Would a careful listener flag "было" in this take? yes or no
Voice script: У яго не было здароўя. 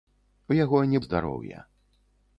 yes